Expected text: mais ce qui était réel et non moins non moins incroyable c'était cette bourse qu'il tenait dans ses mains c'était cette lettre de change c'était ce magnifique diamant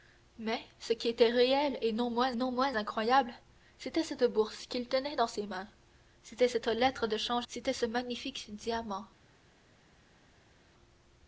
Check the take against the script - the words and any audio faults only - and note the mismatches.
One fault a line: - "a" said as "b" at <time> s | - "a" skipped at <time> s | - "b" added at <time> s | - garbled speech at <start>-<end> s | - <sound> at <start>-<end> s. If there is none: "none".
none